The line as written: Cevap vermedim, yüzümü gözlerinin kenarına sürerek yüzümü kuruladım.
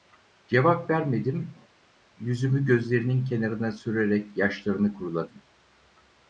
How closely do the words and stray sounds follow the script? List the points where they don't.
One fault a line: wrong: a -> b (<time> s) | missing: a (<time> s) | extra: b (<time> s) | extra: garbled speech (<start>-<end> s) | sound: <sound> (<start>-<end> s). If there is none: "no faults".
wrong: yüzümü -> yaşlarını (4.4 s)